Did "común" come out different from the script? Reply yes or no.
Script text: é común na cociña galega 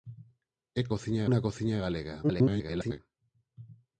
yes